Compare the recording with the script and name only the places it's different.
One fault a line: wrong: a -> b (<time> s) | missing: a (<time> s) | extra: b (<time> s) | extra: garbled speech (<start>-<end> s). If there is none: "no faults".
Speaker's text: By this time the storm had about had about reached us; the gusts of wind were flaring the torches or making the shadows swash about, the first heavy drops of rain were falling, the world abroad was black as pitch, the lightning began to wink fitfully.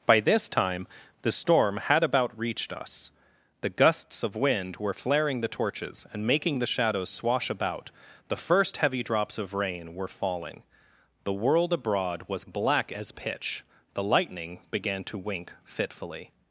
missing: had about (2.4 s)
wrong: or -> and (6.1 s)